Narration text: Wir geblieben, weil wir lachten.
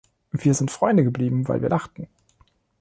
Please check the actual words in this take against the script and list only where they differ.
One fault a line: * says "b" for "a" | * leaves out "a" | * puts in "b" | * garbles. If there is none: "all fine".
* puts in "sind Freunde"